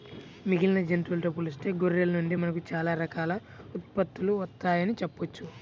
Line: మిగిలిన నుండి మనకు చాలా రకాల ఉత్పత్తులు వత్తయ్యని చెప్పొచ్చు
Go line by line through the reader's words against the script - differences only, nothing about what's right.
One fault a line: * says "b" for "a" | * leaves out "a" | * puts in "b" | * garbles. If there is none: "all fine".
* puts in "జంతువులతో పోలిస్తే గొర్రెల"